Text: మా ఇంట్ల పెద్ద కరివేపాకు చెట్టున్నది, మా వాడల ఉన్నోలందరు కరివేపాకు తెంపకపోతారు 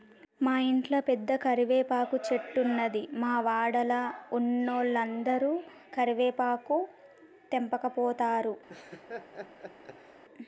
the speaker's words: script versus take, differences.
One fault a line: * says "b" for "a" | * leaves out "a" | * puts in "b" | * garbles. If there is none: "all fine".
all fine